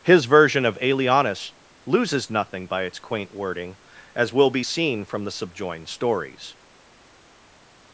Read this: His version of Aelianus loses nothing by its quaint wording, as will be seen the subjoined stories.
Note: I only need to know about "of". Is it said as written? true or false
true